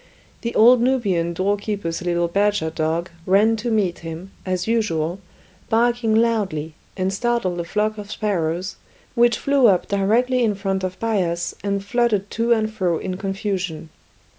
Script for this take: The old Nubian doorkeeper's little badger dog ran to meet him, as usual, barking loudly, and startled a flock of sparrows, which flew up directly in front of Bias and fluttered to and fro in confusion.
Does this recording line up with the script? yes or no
yes